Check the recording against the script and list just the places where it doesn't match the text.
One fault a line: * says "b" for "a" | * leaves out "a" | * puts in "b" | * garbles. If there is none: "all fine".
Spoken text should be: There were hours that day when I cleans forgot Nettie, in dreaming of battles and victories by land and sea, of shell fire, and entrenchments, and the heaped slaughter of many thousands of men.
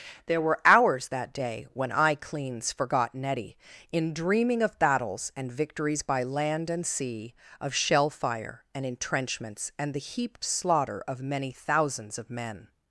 all fine